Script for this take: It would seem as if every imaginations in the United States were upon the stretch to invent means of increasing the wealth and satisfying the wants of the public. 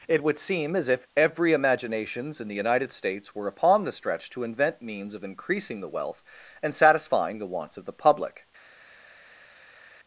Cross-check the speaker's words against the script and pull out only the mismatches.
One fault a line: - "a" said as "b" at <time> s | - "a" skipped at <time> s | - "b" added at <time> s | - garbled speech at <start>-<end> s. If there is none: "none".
none